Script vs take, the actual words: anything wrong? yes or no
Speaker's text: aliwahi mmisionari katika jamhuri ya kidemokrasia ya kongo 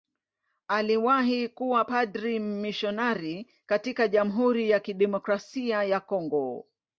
yes